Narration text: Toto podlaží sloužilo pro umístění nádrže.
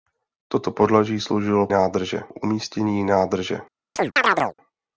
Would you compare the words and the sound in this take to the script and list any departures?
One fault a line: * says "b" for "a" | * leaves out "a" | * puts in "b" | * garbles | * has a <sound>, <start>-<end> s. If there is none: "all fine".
* says "nádrže" for "pro"
* has a chirp, 4.0-4.5 s